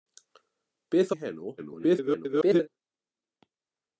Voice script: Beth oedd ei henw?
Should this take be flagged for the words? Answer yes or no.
yes